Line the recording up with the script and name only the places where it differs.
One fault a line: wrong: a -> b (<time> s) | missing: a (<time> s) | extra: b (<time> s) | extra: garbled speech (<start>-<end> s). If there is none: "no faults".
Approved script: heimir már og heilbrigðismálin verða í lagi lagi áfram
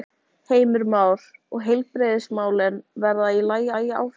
no faults